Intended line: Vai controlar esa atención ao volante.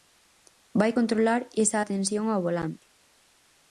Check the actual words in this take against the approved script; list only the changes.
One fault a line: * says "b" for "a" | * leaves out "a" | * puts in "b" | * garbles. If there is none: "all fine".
all fine